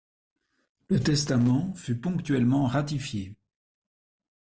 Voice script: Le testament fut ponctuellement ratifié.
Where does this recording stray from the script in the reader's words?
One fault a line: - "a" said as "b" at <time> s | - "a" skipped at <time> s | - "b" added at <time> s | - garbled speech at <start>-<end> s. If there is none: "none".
none